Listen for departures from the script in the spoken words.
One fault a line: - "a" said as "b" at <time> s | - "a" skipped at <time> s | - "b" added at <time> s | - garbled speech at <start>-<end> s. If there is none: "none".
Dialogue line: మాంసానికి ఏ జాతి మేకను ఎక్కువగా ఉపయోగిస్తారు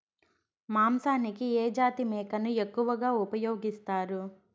none